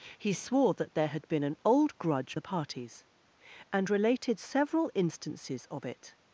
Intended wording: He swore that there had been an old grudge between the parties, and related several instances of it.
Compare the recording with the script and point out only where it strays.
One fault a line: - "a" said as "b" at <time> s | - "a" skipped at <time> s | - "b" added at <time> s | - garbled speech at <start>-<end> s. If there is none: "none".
- "between" skipped at 2.4 s